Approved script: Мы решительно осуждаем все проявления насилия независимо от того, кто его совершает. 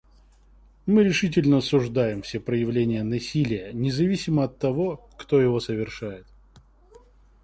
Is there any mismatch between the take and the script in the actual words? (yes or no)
no